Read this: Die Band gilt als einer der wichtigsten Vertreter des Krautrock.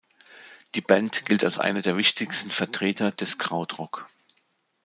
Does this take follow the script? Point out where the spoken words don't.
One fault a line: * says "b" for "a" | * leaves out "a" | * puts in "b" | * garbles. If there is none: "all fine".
all fine